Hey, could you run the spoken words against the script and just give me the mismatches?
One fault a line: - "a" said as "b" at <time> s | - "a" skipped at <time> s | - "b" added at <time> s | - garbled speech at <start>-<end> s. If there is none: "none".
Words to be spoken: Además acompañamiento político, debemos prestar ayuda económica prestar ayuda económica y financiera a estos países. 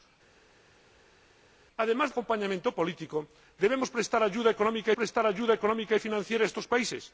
none